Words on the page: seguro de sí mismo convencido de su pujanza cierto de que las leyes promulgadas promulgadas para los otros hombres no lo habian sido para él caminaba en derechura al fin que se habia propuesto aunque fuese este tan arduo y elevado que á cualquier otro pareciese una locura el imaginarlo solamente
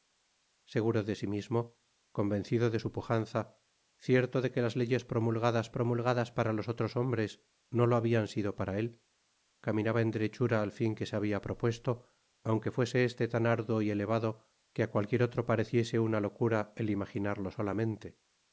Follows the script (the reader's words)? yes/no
yes